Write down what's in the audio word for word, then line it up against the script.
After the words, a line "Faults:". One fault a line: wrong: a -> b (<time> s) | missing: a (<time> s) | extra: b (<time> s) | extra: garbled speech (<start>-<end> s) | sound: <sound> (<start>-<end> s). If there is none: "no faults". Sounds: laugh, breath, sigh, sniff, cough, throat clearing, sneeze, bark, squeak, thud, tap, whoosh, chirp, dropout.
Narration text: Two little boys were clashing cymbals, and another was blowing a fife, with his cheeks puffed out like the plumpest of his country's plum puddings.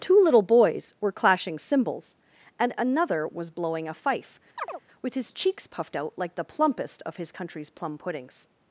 Two little boys were clashing cymbals, and another was blowing a fife, with his cheeks puffed out like the plumpest of his country's plum puddings.
Faults:
sound: chirp (4.6-4.8 s)